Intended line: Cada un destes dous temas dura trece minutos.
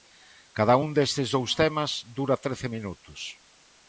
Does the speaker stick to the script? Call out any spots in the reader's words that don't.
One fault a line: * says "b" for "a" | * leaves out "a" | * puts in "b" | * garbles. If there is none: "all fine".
all fine